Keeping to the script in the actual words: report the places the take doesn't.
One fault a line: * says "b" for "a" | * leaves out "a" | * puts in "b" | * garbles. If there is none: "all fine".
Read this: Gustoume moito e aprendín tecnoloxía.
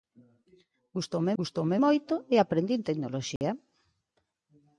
* puts in "gustoume"